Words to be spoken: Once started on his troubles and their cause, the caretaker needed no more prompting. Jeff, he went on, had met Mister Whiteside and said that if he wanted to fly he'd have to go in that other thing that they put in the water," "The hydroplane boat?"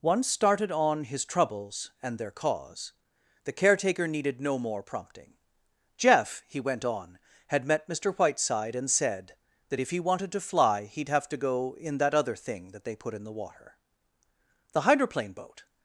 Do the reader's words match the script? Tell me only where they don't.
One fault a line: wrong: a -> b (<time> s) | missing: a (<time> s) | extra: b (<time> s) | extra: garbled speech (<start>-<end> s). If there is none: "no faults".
no faults